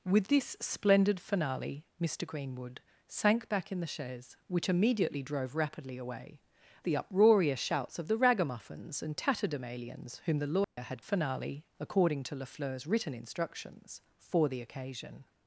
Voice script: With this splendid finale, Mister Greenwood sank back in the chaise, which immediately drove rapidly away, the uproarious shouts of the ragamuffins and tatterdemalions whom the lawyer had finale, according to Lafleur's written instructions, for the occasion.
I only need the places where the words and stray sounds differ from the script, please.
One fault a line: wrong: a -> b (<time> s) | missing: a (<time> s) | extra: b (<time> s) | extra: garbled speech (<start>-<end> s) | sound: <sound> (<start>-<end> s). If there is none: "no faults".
sound: dropout (10.6-10.8 s)